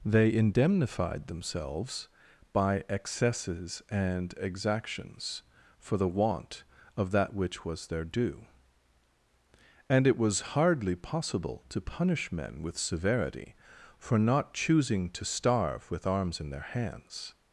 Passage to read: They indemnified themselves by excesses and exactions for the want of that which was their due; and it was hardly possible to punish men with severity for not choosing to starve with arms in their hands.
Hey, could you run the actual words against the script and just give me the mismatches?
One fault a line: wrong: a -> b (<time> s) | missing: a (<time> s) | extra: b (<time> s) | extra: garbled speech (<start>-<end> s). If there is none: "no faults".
no faults